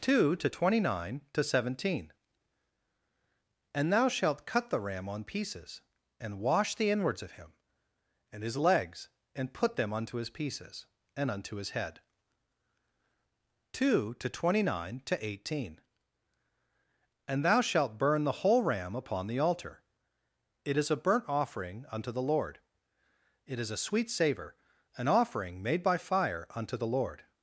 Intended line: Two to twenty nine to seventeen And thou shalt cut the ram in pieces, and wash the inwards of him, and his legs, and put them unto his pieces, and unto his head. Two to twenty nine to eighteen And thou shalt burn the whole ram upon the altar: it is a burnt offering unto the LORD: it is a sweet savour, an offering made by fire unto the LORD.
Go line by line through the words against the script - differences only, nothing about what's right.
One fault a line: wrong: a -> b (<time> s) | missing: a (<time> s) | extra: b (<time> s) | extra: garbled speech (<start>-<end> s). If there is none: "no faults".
wrong: in -> on (5.1 s)